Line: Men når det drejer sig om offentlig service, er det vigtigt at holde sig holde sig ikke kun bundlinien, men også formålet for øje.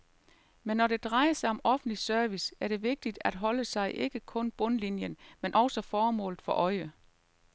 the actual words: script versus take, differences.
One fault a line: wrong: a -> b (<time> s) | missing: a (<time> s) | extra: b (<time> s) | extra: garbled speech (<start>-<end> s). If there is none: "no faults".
missing: holde sig (3.9 s)